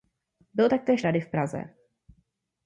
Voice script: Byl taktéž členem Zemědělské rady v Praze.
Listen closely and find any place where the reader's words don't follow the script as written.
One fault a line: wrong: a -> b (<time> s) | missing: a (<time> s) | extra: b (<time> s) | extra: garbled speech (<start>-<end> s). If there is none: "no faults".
missing: členem Zemědělské (1.0 s)